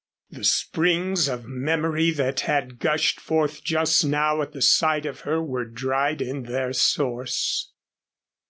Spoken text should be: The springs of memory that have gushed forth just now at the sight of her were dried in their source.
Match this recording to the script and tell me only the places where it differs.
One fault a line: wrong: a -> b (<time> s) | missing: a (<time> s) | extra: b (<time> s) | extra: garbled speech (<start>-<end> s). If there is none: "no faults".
wrong: have -> had (2.4 s)